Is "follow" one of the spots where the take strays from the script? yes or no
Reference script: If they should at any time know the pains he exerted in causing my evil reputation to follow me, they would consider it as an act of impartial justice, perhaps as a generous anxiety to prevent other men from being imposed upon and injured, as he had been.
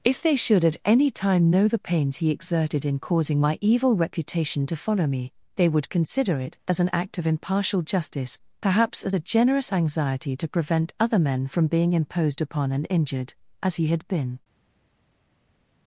no